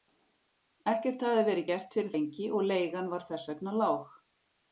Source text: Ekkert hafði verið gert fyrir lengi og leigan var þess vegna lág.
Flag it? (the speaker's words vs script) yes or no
no